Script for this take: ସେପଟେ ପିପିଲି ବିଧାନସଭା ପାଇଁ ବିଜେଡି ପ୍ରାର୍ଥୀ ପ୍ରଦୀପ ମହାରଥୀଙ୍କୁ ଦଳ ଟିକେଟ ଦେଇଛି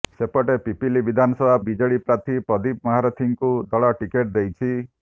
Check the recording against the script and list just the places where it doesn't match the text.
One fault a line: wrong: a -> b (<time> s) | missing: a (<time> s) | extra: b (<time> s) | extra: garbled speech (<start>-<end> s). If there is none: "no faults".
missing: ପାଇଁ (1.6 s)